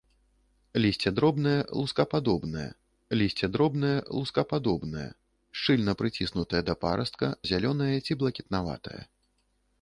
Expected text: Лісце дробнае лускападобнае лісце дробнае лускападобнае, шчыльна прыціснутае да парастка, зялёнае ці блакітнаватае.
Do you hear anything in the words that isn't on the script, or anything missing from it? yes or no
no